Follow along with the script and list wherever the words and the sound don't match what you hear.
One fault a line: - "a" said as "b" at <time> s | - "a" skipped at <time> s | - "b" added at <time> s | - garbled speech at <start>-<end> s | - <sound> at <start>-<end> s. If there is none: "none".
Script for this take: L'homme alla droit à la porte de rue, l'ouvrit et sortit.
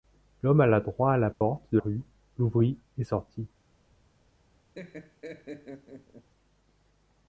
- dropout at 1.3-1.4 s
- laugh at 4.7-6.3 s